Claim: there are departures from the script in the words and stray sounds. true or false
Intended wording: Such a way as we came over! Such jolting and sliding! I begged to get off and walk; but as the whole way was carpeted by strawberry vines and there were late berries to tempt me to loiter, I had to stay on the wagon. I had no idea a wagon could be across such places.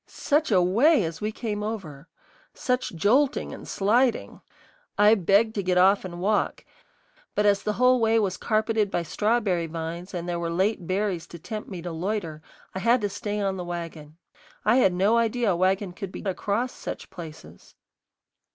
false